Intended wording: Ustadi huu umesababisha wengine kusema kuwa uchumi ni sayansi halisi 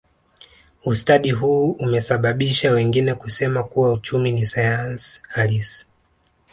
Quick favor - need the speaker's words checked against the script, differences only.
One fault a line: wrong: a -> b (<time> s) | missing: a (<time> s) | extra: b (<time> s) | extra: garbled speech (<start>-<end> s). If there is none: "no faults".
no faults